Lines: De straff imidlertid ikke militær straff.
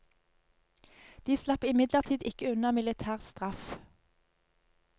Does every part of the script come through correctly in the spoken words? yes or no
no